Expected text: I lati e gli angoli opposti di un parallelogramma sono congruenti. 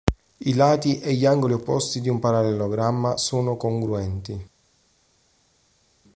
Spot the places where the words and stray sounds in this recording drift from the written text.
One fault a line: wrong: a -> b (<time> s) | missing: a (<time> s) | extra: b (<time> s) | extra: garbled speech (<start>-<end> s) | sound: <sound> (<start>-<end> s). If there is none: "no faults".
no faults